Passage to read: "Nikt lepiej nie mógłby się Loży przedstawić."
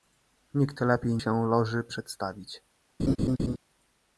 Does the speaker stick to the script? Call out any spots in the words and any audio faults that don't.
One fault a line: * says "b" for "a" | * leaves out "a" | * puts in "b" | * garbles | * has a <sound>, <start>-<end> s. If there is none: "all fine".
* leaves out "nie mógłby"
* has a laugh, 3.0-3.6 s